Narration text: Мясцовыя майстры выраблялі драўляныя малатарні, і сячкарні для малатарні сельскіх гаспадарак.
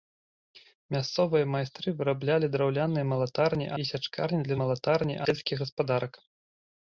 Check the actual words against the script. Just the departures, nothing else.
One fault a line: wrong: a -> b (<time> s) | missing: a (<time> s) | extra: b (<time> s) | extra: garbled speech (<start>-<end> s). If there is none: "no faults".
no faults